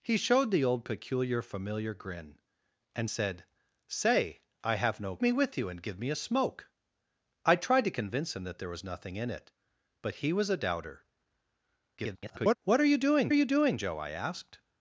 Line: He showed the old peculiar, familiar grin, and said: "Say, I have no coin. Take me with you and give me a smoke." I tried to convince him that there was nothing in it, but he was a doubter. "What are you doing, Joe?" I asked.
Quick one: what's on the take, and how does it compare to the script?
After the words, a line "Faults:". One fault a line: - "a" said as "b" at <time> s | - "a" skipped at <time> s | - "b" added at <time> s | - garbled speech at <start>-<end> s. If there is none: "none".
He showed the old peculiar, familiar grin, and said: "Say, I have no me with you and give me a smoke." I tried to convince him that there was nothing in it, but he was a doubter. [garbled] "What are you doing you doing, Joe?" I asked.
Faults:
- "coin Take" skipped at 5.2 s
- garbled speech at 12.0-12.6 s
- "you doing" added at 13.3 s